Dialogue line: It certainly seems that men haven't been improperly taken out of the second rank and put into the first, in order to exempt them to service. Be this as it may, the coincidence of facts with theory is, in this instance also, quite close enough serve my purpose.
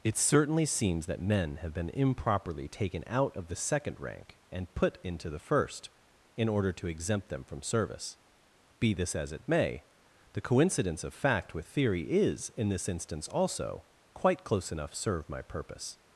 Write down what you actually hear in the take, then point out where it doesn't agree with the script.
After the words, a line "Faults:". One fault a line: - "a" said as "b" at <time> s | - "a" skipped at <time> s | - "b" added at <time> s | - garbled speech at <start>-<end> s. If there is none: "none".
It certainly seems that men have been improperly taken out of the second rank and put into the first, in order to exempt them from service. Be this as it may, the coincidence of fact with theory is, in this instance also, quite close enough serve my purpose.
Faults:
- "haven't" said as "have" at 1.6 s
- "to" said as "from" at 7.4 s
- "facts" said as "fact" at 11.1 s